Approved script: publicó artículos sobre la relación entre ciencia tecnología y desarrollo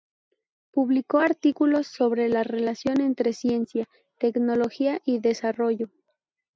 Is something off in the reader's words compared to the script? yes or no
no